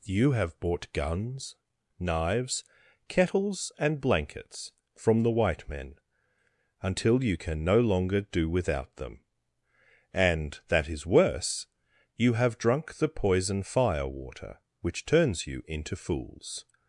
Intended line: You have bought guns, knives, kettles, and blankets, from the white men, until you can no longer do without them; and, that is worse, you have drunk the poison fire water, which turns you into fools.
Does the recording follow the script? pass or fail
pass